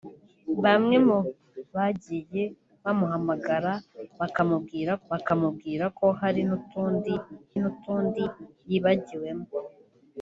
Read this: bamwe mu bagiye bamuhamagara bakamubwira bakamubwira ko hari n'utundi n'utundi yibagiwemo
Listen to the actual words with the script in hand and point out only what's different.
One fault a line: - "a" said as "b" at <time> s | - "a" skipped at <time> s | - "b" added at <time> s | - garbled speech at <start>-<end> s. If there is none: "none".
none